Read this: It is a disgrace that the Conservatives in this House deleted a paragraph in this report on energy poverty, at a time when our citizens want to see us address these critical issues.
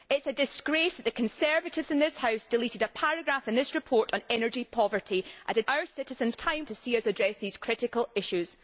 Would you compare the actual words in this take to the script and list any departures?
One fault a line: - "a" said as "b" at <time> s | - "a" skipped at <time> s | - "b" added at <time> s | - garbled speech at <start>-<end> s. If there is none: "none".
- "time when" skipped at 5.6 s
- "want" said as "time" at 6.3 s